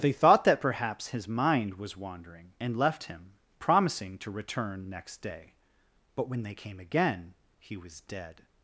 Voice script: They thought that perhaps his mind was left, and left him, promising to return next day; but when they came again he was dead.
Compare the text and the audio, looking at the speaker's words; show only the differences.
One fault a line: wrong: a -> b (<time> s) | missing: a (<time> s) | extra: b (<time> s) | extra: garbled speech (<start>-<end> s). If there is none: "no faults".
wrong: left -> wandering (1.9 s)